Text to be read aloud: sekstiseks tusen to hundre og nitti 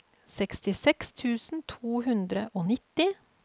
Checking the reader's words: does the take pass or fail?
pass